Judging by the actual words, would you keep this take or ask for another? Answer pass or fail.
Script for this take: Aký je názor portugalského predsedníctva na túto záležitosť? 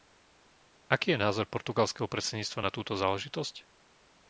pass